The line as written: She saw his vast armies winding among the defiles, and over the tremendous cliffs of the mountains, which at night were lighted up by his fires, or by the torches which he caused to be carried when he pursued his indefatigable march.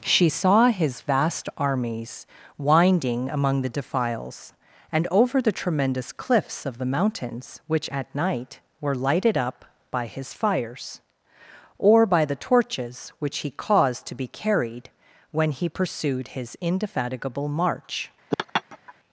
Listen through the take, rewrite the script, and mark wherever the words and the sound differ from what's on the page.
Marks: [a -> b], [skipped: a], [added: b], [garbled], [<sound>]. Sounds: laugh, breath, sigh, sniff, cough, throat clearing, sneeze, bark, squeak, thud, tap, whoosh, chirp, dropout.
She saw his vast armies winding among the defiles, and over the tremendous cliffs of the mountains, which at night were lighted up by his fires, or by the torches which he caused to be carried when he pursued his indefatigable march. [laugh]